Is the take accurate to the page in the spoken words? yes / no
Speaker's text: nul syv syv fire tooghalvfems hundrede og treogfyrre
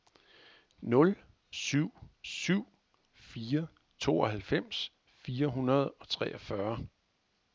no